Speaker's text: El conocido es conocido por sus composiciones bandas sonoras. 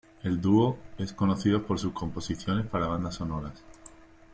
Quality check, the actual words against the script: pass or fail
fail